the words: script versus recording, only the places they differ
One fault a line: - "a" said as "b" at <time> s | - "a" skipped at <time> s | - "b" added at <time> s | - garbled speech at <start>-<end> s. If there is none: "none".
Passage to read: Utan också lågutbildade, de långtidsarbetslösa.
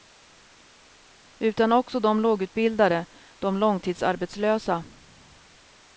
- "de" added at 2.0 s